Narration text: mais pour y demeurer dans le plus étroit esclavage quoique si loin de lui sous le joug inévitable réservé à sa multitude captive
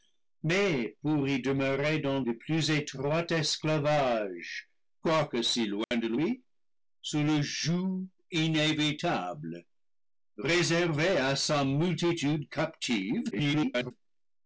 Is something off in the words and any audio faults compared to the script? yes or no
yes